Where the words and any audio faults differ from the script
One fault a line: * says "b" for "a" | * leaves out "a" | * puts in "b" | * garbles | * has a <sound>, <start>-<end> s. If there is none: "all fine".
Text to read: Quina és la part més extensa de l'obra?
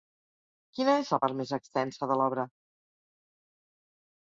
all fine